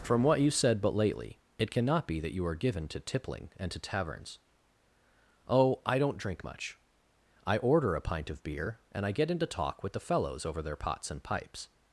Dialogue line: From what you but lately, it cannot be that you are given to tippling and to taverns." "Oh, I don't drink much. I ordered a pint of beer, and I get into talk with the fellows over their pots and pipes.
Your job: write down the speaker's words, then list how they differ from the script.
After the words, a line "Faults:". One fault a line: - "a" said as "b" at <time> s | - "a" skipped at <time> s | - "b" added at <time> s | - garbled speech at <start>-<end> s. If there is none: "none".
From what you said but lately, it cannot be that you are given to tippling and to taverns." "Oh, I don't drink much. I order a pint of beer, and I get into talk with the fellows over their pots and pipes.
Faults:
- "said" added at 0.5 s
- "ordered" said as "order" at 7.6 s